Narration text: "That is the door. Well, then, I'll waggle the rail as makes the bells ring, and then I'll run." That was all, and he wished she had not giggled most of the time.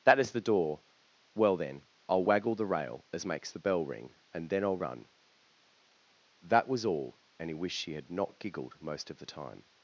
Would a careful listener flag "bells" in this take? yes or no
yes